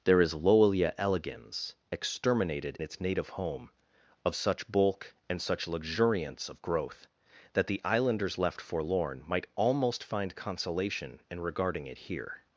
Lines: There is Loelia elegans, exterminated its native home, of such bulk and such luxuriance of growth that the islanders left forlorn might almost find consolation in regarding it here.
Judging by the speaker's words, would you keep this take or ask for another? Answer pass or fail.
pass